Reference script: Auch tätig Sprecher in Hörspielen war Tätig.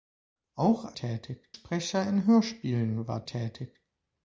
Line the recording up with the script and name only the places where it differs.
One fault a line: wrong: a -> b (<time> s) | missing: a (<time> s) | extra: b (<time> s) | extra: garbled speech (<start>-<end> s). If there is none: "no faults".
no faults